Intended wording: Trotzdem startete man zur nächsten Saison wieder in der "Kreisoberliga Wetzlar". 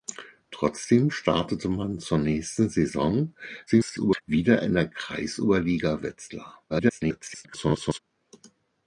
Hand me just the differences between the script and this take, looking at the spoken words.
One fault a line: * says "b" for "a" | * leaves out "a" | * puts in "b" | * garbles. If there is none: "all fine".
* garbles
* garbles